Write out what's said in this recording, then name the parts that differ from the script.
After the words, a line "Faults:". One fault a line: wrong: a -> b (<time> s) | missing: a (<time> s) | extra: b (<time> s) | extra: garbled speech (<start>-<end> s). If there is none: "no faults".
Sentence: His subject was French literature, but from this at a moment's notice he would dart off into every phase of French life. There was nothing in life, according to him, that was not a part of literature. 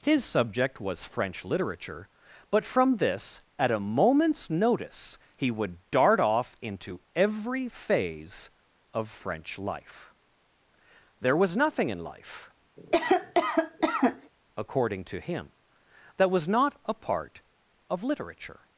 His subject was French literature, but from this at a moment's notice he would dart off into every phase of French life. There was nothing in life, according to him, that was not a part of literature.
Faults:
no faults